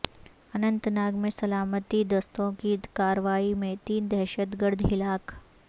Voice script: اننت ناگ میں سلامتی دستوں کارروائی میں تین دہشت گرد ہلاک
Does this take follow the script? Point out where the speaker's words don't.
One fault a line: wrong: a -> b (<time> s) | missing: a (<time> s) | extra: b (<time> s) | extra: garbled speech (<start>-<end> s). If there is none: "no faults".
extra: کی (2.6 s)